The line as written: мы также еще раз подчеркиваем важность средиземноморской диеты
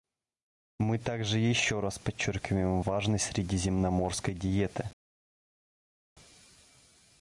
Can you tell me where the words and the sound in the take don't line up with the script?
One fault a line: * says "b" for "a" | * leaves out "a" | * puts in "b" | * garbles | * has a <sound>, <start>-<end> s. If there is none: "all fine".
all fine